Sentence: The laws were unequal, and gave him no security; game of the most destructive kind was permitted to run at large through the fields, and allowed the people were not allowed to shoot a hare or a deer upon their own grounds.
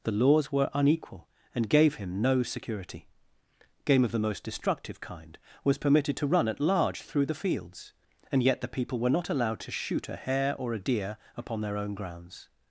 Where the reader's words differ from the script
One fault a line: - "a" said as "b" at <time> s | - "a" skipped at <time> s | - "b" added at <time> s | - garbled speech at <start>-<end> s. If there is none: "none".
- "allowed" said as "yet" at 8.4 s